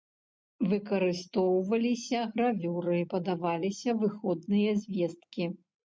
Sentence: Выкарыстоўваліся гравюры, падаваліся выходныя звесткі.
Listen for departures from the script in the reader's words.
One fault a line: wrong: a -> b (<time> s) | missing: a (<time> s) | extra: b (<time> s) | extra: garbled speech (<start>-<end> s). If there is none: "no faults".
no faults